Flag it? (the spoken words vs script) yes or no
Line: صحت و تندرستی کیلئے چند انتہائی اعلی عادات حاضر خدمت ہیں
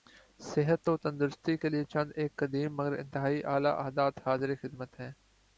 yes